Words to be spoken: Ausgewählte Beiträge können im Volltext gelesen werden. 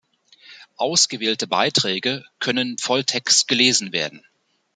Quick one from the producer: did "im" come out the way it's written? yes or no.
no